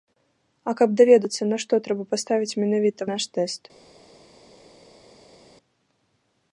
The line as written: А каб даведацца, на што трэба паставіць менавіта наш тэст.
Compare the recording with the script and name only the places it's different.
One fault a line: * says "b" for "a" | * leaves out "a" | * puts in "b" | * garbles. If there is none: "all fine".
all fine